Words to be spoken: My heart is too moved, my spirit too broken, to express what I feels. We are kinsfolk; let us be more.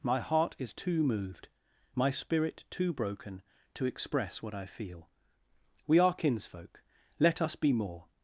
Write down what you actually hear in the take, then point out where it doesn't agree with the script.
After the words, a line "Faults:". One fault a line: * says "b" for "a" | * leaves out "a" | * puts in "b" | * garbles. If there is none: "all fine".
My heart is too moved, my spirit too broken, to express what I feel. We are kinsfolk; let us be more.
Faults:
* says "feel" for "feels"